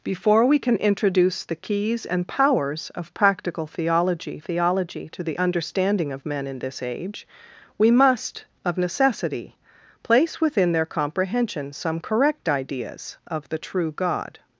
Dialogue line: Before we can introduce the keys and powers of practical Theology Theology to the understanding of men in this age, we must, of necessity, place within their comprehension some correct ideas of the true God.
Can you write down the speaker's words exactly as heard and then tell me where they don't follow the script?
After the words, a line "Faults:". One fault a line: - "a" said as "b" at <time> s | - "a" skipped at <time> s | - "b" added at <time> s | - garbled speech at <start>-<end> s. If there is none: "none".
Before we can introduce the keys and powers of practical Theology Theology to the understanding of men in this age, we must, of necessity, place within their comprehension some correct ideas of the true God.
Faults:
none